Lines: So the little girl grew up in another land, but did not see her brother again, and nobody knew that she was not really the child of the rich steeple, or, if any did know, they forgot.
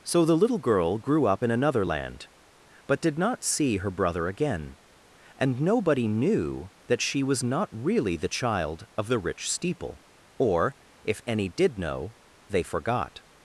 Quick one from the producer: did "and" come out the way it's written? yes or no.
yes